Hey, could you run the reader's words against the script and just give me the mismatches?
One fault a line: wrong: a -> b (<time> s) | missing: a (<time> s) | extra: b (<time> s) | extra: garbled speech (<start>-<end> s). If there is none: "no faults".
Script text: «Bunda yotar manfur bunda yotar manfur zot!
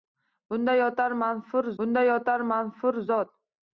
no faults